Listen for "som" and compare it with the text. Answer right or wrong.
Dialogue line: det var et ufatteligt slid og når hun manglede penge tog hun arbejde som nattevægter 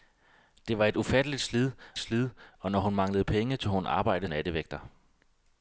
wrong